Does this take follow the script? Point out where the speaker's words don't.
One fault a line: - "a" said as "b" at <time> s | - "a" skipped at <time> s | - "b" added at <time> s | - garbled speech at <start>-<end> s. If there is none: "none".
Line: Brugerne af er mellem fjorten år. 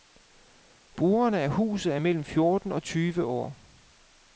- "huset" added at 1.5 s
- "og tyve" added at 2.7 s